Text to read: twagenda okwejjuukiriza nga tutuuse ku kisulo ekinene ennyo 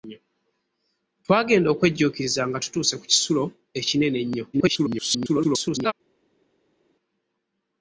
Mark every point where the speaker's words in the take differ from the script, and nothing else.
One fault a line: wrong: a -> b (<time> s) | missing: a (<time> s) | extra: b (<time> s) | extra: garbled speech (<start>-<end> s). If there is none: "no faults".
extra: garbled speech (4.5-5.9 s)